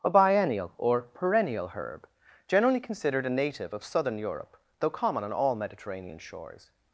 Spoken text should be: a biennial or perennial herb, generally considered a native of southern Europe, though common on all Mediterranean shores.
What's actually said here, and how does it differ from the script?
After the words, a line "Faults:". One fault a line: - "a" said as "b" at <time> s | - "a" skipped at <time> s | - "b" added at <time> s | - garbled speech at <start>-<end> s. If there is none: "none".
a biennial or perennial herb, generally considered a native of southern Europe, though common on all Mediterranean shores.
Faults:
none